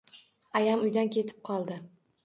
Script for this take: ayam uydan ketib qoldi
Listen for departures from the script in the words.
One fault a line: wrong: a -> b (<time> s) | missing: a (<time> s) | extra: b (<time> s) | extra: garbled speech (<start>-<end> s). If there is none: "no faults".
no faults